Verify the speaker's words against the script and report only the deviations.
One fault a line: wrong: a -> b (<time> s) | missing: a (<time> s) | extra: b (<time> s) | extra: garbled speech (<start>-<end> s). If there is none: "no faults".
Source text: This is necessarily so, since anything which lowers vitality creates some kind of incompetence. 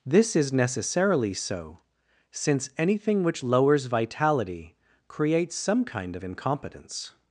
no faults